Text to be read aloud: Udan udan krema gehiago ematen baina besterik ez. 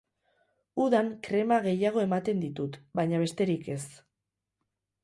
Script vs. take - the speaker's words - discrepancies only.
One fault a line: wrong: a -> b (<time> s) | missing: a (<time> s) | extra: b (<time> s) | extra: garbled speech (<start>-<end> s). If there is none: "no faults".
missing: udan (1.1 s)
extra: ditut (2.5 s)